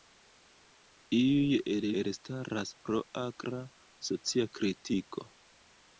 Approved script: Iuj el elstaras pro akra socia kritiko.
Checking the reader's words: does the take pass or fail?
pass